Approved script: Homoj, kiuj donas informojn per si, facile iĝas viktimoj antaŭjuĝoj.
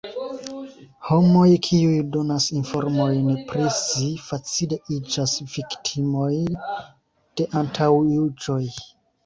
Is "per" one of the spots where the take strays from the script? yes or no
yes